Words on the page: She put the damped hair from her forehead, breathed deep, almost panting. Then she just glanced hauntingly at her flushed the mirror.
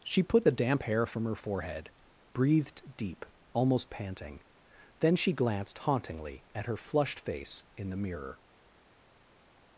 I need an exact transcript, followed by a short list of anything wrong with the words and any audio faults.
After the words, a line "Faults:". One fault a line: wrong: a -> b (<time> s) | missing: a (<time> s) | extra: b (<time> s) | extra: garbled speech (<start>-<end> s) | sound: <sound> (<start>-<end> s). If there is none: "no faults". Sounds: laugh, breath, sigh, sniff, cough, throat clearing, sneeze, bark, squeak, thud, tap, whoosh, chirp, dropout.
She put the damp hair from her forehead, breathed deep, almost panting. Then she glanced hauntingly at her flushed face in the mirror.
Faults:
wrong: damped -> damp (0.5 s)
missing: just (5.3 s)
extra: face in (7.2 s)